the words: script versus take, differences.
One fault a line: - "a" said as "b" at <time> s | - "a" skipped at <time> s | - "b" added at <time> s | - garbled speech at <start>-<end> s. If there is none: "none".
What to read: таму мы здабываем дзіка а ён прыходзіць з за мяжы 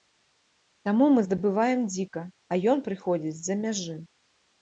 none